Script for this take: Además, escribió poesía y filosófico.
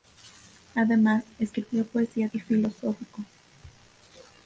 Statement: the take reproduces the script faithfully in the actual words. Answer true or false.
true